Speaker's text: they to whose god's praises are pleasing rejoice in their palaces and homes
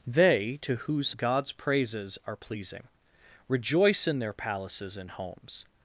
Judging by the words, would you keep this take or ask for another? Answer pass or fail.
pass